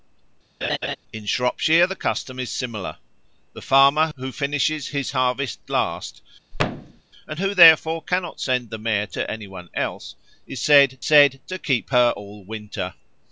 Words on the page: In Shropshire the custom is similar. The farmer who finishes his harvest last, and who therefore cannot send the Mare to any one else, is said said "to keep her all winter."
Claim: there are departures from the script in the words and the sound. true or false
true